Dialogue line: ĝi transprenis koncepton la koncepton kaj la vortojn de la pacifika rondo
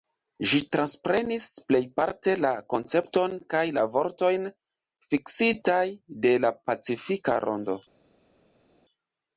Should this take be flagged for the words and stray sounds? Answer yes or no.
yes